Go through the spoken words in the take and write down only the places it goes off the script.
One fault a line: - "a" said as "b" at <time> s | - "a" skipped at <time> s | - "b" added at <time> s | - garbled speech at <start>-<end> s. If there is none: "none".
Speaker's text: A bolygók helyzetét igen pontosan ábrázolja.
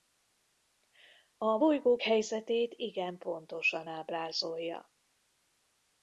none